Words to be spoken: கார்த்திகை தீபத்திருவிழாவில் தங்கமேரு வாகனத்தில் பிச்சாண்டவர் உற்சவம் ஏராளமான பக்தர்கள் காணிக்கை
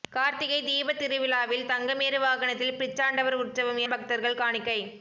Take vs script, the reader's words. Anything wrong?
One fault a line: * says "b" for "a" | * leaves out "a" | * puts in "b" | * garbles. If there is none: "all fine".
* leaves out "ஏராளமான"